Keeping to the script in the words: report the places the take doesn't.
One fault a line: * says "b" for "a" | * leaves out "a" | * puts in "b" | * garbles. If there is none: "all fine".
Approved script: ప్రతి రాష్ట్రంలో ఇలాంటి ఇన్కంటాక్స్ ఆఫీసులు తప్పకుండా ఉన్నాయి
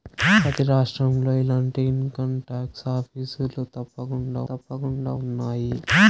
* puts in "తప్పకుండా"